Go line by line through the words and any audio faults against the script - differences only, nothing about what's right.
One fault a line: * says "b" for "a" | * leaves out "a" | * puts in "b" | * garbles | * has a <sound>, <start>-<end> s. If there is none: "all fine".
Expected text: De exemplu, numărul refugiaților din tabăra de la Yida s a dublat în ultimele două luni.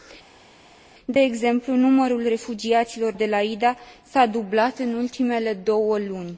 * leaves out "din tabăra"